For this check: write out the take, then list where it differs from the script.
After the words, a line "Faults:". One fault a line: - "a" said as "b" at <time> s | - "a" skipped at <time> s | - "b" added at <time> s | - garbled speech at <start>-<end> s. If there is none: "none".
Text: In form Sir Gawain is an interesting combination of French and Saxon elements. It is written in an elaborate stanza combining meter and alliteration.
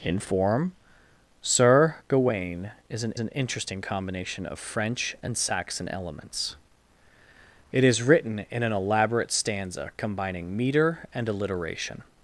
In form Sir Gawain is an an interesting combination of French and Saxon elements. It is written in an elaborate stanza combining meter and alliteration.
Faults:
- "an" added at 3.2 s